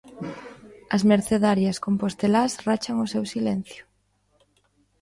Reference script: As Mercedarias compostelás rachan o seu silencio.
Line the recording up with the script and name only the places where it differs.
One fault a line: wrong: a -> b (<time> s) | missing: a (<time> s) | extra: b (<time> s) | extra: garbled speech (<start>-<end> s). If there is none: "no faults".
no faults